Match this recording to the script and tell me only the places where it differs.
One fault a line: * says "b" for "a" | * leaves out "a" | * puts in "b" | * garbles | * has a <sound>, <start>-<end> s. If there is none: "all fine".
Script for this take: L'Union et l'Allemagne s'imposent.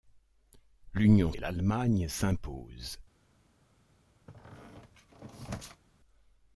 * has a squeak, 4.3-5.8 s